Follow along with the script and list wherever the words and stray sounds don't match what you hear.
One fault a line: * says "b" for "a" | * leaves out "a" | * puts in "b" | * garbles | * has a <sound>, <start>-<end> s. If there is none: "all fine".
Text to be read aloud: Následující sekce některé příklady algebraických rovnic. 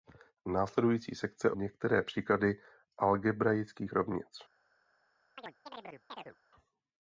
* has a chirp, 5.4-6.4 s